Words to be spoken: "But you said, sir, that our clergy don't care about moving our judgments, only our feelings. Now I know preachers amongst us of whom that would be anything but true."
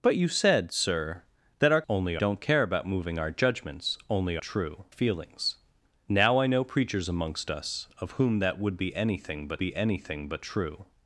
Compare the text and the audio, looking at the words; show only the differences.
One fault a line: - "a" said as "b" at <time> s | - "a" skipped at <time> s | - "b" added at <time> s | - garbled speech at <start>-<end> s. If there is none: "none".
- "clergy" said as "only" at 1.9 s
- "our" said as "true" at 4.4 s
- "be anything but" added at 9.6 s